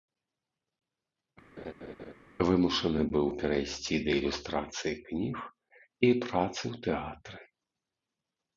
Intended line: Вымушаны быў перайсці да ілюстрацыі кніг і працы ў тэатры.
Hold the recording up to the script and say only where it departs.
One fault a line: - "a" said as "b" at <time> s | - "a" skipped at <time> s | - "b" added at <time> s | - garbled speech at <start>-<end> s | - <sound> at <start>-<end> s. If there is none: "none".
- laugh at 1.6-2.1 s